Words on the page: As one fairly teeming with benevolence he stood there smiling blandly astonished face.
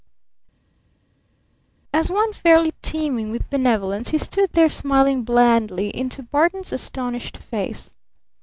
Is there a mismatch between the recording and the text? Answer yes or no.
yes